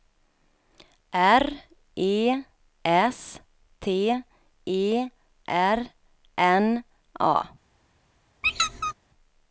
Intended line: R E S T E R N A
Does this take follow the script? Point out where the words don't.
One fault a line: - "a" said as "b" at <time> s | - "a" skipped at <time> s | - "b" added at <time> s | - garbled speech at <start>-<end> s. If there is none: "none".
none